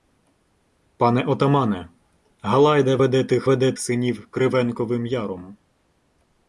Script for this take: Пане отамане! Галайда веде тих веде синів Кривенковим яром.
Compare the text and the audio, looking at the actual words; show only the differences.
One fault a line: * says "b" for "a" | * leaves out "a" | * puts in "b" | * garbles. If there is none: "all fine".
all fine